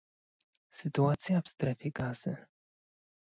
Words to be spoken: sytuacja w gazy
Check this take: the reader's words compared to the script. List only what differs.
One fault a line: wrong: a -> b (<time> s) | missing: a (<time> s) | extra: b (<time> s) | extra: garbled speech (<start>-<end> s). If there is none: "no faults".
extra: strefie (1.5 s)